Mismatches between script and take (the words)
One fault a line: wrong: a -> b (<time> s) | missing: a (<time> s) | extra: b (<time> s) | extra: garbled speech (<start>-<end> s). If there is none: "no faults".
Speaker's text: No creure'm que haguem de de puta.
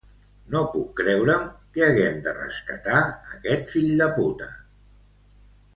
extra: puc (0.7 s)
extra: rescatar aquest fill (2.4 s)